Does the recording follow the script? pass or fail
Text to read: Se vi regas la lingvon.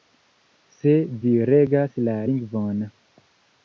pass